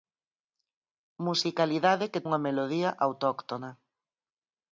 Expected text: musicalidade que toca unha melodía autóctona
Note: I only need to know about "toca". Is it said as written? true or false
false